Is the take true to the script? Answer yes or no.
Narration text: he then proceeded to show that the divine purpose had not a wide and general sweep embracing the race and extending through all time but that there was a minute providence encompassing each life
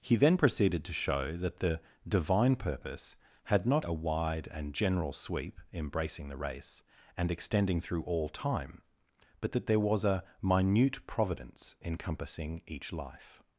yes